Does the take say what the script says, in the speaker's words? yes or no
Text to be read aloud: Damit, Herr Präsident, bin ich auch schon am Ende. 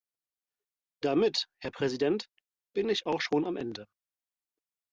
yes